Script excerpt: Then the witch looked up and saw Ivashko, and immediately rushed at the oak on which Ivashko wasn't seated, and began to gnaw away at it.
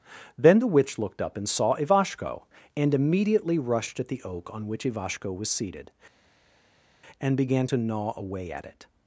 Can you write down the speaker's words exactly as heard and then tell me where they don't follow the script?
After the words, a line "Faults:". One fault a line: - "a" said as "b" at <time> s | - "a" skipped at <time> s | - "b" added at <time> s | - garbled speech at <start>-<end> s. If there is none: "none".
Then the witch looked up and saw Ivashko, and immediately rushed at the oak on which Ivashko was seated, and began to gnaw away at it.
Faults:
- "wasn't" said as "was" at 5.3 s